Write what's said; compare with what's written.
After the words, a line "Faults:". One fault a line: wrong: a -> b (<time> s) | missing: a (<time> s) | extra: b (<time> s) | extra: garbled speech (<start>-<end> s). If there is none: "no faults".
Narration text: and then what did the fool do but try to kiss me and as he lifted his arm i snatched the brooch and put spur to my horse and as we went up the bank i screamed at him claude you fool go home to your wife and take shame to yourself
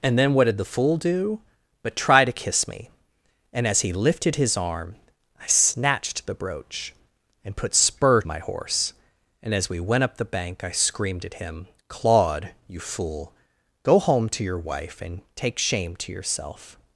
and then what did the fool do but try to kiss me and as he lifted his arm i snatched the brooch and put spur my horse and as we went up the bank i screamed at him claude you fool go home to your wife and take shame to yourself
Faults:
missing: to (8.2 s)